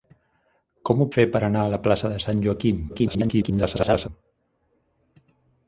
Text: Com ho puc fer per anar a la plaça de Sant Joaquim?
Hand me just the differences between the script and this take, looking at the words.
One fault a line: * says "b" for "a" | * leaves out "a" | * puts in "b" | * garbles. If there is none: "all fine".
* leaves out "puc"
* garbles